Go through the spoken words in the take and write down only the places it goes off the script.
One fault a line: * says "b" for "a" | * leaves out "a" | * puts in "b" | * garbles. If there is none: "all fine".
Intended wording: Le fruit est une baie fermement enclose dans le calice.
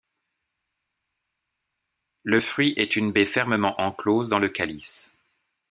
all fine